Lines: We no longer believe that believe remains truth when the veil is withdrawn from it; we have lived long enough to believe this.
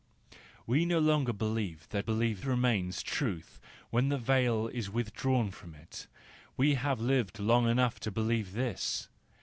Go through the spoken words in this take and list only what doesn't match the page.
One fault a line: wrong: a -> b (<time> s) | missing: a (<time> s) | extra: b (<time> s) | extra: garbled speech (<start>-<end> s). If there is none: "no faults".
no faults